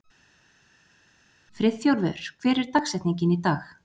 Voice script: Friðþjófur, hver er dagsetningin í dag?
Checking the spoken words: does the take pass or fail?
pass